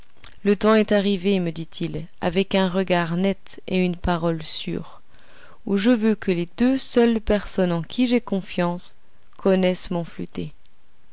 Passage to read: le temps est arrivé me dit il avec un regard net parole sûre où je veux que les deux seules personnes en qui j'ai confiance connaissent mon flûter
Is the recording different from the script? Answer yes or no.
yes